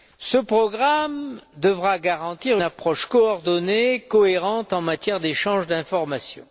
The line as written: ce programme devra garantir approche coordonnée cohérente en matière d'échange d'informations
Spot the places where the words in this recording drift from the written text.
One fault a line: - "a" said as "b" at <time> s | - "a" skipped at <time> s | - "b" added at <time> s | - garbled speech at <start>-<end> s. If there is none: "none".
none